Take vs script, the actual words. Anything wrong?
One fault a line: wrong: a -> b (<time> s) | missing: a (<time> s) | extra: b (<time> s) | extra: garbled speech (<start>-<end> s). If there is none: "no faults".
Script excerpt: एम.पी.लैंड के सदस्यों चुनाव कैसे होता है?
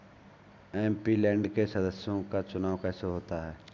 extra: का (2.2 s)